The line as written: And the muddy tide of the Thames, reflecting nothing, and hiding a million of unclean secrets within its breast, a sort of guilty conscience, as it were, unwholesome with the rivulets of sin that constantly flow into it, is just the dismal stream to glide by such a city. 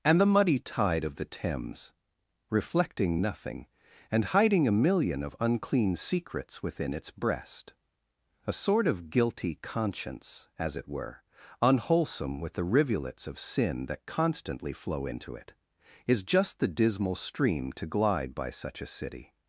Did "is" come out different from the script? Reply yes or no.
no